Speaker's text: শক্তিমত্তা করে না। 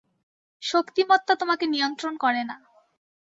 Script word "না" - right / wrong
right